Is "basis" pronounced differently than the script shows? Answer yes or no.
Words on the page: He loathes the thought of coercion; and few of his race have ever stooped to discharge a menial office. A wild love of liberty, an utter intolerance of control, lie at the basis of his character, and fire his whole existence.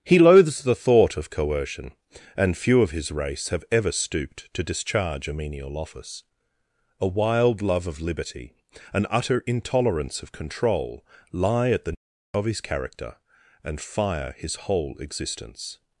yes